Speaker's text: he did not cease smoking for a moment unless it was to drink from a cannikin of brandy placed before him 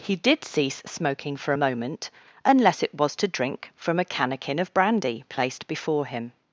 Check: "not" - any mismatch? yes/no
yes